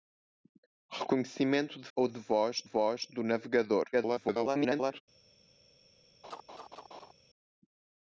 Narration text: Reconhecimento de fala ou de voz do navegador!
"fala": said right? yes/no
no